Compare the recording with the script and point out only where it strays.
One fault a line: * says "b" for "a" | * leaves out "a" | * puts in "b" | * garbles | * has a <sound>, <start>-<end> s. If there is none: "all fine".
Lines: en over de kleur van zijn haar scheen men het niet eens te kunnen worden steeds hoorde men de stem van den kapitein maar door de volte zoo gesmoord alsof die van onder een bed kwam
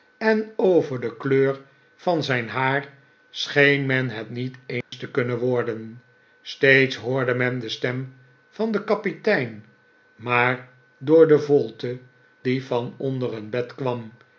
* has a dropout, 4.8-4.9 s
* leaves out "zoo gesmoord alsof"